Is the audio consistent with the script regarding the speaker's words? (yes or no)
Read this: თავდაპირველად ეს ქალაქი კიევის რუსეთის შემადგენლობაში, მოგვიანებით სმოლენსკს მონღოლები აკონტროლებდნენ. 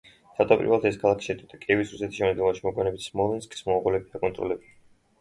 no